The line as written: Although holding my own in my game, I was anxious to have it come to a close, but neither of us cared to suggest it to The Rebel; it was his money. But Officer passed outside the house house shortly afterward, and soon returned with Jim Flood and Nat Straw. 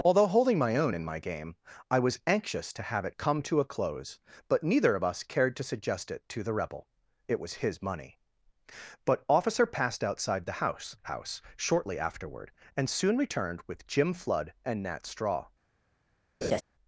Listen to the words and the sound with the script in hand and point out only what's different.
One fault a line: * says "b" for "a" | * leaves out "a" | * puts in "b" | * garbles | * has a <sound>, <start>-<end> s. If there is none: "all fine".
* has a laugh, 16.4-16.6 s